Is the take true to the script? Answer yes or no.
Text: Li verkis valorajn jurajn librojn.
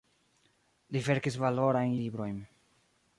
no